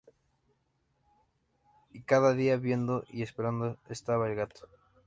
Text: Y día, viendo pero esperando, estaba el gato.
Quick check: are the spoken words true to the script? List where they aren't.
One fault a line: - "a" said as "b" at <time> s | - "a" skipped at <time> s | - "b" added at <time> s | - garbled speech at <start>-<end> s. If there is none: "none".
- "cada" added at 2.0 s
- "pero" said as "y" at 3.1 s